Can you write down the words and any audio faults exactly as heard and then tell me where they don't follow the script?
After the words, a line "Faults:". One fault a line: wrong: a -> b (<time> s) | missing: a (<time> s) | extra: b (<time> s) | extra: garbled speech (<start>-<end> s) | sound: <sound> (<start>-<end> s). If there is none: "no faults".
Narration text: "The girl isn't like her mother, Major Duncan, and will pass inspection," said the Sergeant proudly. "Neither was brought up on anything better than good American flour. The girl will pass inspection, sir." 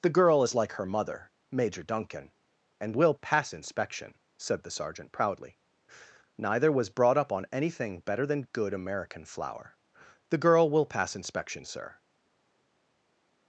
"The girl is like her mother, Major Duncan, and will pass inspection," said the Sergeant proudly. "Neither was brought up on anything better than good American flour. The girl will pass inspection, sir."
Faults:
wrong: isn't -> is (0.4 s)